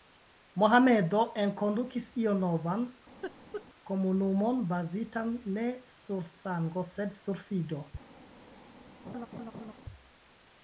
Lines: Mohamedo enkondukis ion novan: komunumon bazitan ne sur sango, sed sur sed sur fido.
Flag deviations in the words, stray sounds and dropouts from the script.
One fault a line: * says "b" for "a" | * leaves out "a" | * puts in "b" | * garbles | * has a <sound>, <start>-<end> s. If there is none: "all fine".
* has a laugh, 3.2-3.7 s
* leaves out "sed sur"
* has a laugh, 9.0-9.7 s